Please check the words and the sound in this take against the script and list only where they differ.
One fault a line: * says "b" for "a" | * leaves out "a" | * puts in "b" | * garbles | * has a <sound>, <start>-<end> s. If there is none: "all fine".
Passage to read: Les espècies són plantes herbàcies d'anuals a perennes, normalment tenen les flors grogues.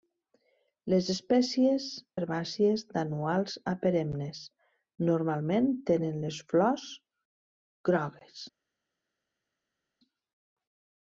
* leaves out "són plantes"